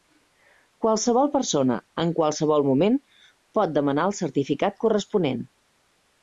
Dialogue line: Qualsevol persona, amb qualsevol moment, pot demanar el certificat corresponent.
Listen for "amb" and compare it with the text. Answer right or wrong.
wrong